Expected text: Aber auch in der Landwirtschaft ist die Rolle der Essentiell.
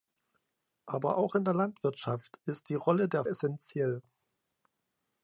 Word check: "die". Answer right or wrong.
right